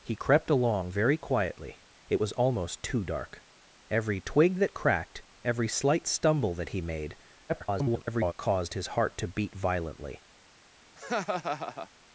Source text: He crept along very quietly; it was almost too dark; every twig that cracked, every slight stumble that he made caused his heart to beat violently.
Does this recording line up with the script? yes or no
no